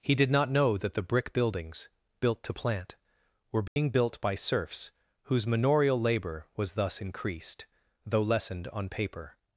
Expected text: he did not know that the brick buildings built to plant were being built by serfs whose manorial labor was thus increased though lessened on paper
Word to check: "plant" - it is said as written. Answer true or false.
true